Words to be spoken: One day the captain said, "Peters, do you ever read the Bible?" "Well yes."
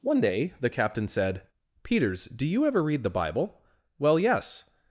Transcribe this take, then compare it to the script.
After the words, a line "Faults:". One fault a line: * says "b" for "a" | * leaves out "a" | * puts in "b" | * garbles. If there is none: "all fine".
One day the captain said, "Peters, do you ever read the Bible?" "Well yes."
Faults:
all fine